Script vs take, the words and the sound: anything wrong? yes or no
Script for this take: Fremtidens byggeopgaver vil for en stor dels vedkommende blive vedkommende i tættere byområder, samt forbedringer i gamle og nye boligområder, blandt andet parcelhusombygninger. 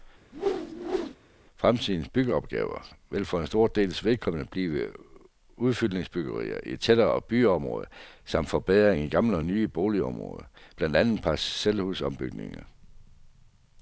yes